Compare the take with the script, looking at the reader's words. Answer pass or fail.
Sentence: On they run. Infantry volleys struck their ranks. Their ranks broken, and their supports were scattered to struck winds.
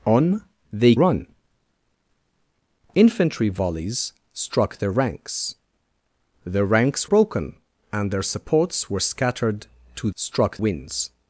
pass